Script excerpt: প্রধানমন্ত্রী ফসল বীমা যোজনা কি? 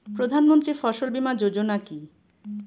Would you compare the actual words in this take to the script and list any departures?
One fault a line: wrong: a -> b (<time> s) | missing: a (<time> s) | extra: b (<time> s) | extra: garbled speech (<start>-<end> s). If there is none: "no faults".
no faults